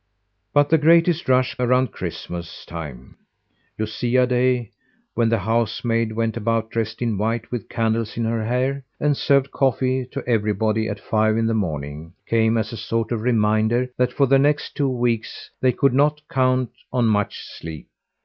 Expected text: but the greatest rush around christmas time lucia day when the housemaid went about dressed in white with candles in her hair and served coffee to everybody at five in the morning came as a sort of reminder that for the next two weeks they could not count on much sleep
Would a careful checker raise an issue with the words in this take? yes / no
no